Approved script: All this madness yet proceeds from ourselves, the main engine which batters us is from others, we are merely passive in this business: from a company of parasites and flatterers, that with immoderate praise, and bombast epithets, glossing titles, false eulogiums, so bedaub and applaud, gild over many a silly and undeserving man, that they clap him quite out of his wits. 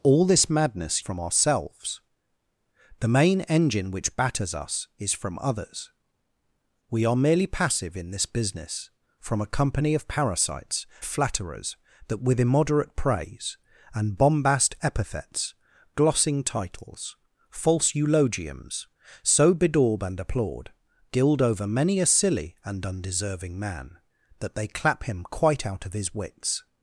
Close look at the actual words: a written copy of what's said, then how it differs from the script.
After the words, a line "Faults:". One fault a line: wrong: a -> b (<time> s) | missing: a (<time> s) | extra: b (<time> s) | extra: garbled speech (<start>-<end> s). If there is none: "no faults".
All this madness from ourselves, the main engine which batters us is from others, we are merely passive in this business: from a company of parasites flatterers, that with immoderate praise, and bombast epithets, glossing titles, false eulogiums, so bedaub and applaud, gild over many a silly and undeserving man, that they clap him quite out of his wits.
Faults:
missing: yet proceeds (1.1 s)
missing: and (10.9 s)